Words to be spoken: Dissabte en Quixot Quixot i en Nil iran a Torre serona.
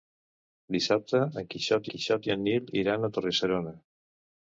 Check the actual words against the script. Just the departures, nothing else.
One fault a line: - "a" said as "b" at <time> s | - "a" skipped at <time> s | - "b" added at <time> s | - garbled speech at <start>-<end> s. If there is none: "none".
none